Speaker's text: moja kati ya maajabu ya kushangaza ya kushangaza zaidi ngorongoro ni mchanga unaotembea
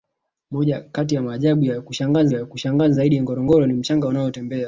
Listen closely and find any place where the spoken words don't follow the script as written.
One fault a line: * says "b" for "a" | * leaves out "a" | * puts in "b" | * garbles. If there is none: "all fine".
all fine